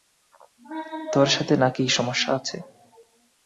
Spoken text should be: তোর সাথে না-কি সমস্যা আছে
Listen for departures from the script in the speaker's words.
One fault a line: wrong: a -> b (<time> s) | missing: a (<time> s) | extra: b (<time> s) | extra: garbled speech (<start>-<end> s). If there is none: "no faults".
no faults